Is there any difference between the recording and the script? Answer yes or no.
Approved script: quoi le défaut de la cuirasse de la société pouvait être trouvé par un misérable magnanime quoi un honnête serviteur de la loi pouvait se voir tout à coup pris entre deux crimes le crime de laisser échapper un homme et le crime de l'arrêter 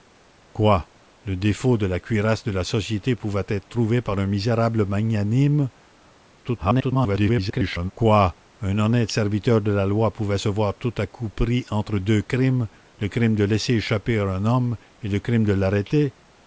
yes